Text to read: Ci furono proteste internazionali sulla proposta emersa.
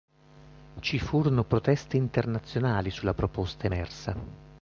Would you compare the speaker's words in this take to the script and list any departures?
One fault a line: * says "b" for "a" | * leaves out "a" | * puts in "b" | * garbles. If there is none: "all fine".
all fine